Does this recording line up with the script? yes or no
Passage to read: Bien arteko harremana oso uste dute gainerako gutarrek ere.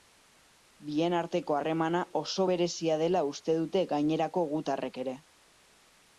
no